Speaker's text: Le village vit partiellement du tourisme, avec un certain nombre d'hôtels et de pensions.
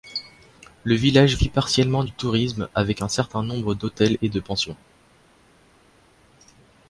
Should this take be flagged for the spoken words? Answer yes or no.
no